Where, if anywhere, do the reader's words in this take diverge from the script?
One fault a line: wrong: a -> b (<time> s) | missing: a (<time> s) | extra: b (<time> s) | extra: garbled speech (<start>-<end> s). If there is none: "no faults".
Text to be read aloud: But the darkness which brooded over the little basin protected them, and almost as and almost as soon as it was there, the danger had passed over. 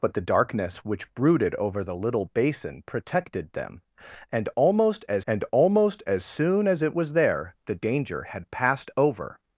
no faults